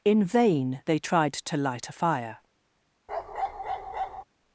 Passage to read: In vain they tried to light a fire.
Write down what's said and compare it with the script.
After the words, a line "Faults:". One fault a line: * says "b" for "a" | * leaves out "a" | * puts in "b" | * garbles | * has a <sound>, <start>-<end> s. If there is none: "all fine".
In vain they tried to light a fire.
Faults:
* has a bark, 3.1-4.2 s